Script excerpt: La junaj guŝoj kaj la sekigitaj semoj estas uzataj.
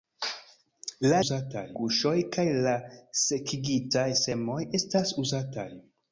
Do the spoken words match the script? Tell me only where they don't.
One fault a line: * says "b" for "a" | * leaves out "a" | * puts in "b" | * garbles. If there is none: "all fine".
* says "uzataj" for "junaj"